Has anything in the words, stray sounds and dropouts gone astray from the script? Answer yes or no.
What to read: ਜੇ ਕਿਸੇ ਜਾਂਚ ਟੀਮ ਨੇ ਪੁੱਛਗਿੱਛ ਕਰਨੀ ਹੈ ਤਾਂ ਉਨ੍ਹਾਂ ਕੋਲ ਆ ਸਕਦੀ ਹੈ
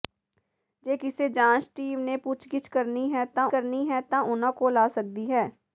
yes